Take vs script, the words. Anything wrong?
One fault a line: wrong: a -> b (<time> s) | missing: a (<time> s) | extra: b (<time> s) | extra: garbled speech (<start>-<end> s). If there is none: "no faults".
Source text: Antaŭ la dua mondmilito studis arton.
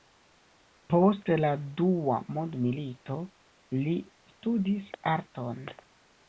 wrong: Antaŭ -> Post (0.9 s)
extra: li (3.8 s)